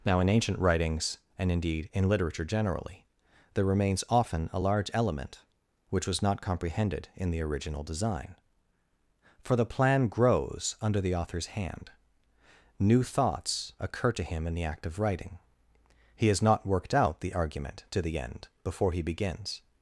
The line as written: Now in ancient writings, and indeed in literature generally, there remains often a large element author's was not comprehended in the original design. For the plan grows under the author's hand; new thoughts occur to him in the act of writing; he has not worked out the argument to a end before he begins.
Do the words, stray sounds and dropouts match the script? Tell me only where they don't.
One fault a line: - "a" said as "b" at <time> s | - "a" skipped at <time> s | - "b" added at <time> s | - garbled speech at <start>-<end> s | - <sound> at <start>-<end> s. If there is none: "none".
- "author's" said as "which" at 5.9 s
- "a" said as "the" at 18.0 s